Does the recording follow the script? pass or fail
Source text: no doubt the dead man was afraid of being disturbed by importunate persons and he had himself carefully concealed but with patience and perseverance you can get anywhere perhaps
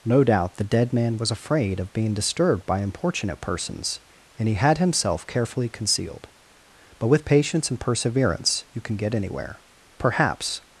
pass